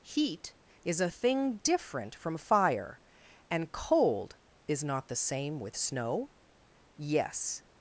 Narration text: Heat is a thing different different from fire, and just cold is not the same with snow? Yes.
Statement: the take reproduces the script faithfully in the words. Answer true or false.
false